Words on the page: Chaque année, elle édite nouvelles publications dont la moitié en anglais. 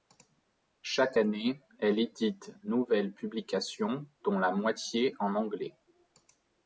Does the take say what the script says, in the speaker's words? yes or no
yes